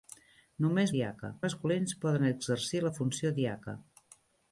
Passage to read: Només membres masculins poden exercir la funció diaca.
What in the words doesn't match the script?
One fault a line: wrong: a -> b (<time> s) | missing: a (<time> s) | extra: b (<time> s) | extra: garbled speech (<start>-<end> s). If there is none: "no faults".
wrong: membres -> diaca (1.0 s)